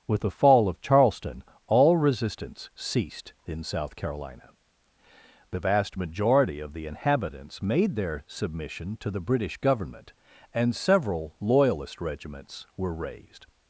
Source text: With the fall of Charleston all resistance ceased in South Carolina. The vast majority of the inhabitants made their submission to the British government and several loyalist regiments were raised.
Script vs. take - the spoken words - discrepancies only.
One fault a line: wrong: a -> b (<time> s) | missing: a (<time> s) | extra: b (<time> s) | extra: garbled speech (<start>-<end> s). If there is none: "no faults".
no faults